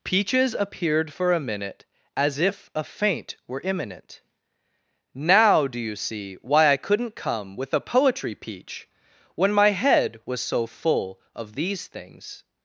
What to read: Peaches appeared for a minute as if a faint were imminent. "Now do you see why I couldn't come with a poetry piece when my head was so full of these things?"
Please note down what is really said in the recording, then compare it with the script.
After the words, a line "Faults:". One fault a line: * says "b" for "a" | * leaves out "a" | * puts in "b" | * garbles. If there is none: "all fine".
Peaches appeared for a minute as if a faint were imminent. "Now do you see why I couldn't come with a poetry peach when my head was so full of these things?"
Faults:
* says "peach" for "piece"